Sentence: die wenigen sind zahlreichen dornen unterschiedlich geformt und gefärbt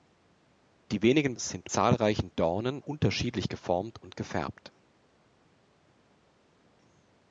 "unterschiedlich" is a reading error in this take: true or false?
false